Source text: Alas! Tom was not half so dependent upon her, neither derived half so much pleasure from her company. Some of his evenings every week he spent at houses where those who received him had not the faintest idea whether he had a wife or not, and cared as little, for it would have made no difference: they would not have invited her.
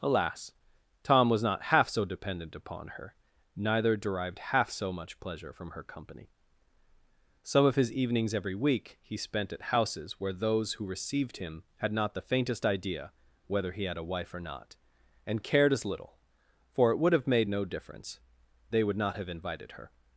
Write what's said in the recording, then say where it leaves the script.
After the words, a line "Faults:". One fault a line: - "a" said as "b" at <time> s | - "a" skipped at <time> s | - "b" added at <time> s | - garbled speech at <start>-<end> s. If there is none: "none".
Alas! Tom was not half so dependent upon her, neither derived half so much pleasure from her company. Some of his evenings every week he spent at houses where those who received him had not the faintest idea whether he had a wife or not, and cared as little, for it would have made no difference: they would not have invited her.
Faults:
none